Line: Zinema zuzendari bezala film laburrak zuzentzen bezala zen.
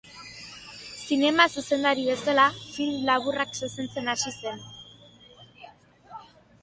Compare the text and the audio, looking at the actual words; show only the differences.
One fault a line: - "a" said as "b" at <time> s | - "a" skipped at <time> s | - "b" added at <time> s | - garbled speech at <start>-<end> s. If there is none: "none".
- "bezala" said as "hasi" at 4.2 s